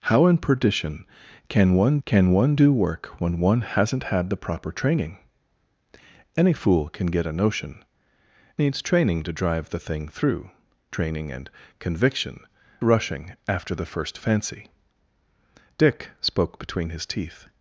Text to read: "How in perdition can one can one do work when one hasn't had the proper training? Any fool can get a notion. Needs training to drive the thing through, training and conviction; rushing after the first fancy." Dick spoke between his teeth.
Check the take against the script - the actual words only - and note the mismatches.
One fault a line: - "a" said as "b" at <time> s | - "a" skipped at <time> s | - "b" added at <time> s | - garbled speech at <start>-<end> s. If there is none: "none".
none